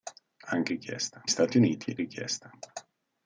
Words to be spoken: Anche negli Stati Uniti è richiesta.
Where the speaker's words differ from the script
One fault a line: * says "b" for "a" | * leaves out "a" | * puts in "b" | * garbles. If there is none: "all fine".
* says "richiesta" for "negli"
* leaves out "è"